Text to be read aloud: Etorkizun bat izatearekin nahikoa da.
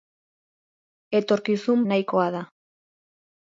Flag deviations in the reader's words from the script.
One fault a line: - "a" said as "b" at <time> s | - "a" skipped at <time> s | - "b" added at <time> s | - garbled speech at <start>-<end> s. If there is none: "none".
- "bat izatearekin" skipped at 1.9 s